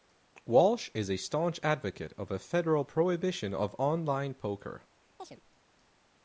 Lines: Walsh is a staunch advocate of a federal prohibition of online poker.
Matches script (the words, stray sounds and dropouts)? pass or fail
fail